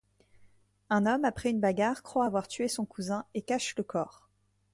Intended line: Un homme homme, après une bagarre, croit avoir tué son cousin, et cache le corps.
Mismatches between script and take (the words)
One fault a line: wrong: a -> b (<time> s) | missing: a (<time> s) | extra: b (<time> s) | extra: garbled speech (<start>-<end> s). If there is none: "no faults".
missing: homme (1.2 s)